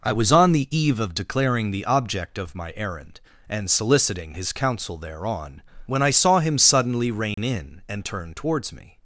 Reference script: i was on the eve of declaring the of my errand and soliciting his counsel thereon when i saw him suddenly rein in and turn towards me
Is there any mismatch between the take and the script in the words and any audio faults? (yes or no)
yes